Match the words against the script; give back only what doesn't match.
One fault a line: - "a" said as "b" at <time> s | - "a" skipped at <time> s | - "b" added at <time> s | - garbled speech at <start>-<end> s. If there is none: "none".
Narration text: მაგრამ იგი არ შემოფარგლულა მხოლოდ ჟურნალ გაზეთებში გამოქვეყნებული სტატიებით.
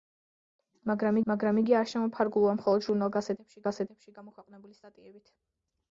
- "მაგრამ" added at 1.3 s
- "გაზეთებში" added at 3.7 s